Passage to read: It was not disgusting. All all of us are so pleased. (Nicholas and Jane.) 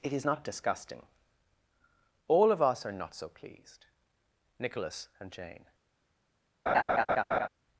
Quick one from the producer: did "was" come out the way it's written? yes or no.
no